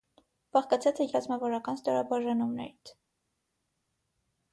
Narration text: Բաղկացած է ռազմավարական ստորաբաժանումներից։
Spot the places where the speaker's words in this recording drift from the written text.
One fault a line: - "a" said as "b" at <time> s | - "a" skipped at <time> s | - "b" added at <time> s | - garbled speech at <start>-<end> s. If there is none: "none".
none